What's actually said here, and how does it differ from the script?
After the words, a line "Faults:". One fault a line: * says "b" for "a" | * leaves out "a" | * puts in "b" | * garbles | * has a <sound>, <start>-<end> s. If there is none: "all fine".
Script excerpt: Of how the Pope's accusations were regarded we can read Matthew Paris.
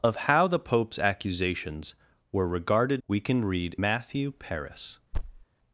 Of how the Pope's accusations were regarded we can read Matthew Paris.
Faults:
* has a thud, 5.1-5.4 s